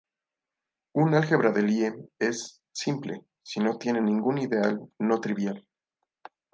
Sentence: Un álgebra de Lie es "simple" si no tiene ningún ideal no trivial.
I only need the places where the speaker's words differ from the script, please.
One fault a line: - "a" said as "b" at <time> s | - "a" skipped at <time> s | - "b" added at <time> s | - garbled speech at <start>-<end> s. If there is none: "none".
none